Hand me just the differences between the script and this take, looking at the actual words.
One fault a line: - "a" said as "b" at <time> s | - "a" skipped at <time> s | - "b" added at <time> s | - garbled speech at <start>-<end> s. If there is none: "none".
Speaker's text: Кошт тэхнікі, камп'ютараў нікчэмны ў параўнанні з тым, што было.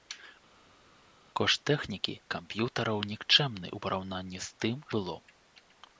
- "што" skipped at 4.8 s